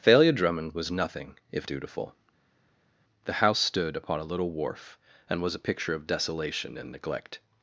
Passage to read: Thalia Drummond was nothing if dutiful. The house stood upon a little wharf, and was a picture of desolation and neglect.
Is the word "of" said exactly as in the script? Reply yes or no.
yes